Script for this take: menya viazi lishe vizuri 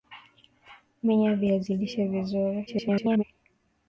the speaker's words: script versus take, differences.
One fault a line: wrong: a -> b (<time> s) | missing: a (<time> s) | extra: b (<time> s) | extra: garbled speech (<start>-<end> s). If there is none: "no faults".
extra: garbled speech (2.7-3.2 s)